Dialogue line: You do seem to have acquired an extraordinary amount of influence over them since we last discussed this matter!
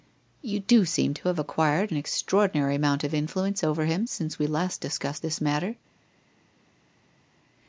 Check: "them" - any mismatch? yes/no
yes